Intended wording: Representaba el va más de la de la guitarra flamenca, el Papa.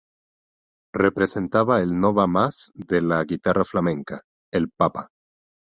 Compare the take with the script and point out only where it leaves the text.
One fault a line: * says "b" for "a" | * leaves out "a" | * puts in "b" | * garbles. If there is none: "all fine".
* puts in "no"
* leaves out "de la"